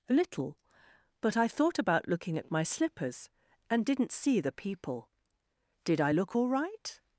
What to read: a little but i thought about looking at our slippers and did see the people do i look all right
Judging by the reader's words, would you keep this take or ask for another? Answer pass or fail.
fail